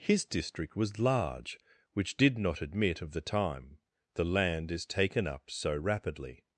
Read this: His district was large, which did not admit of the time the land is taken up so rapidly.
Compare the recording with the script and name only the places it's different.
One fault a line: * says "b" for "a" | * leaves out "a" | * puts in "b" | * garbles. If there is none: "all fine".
all fine